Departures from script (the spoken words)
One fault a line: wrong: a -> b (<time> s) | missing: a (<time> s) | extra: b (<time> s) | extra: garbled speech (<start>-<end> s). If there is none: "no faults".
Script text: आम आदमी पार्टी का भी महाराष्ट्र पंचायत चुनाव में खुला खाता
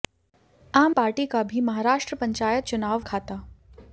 missing: आदमी (0.9 s)
missing: में खुला (3.0 s)